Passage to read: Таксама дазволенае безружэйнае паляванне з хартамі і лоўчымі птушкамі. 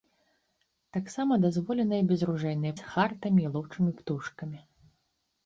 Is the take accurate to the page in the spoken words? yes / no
no